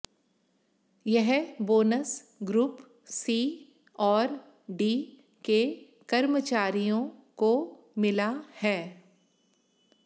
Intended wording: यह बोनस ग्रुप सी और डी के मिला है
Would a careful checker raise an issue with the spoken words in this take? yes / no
yes